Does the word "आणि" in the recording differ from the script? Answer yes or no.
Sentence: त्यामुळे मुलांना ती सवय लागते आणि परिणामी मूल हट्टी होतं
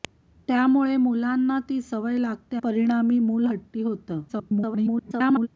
yes